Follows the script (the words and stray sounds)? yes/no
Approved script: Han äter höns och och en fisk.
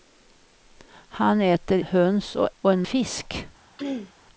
no